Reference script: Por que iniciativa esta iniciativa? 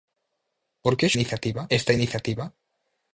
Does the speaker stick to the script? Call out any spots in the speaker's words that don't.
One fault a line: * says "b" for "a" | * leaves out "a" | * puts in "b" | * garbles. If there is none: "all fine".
all fine